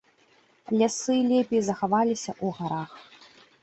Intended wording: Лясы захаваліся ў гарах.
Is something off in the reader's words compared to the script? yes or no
yes